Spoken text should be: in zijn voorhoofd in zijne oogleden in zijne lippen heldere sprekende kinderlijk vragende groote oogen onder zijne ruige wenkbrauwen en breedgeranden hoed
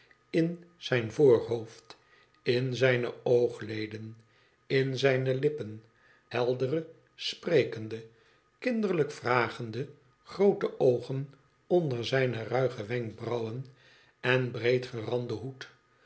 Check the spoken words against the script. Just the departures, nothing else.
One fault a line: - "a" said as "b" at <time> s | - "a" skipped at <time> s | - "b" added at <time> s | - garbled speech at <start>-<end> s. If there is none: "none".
none